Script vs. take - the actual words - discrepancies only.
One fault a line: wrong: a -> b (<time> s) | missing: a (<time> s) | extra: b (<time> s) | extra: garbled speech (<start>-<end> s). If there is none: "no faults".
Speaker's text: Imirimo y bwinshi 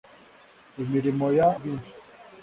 no faults